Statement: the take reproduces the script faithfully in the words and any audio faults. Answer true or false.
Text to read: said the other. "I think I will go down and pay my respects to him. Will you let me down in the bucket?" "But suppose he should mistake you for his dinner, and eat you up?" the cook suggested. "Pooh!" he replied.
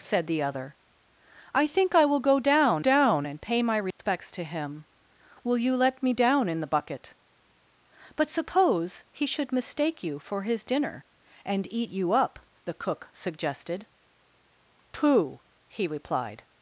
false